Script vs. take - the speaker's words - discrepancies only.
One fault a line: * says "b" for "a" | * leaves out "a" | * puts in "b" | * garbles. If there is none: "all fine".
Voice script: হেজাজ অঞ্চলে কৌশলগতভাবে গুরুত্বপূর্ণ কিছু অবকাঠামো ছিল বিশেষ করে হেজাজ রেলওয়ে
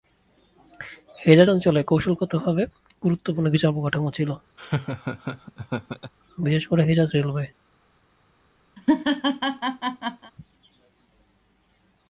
all fine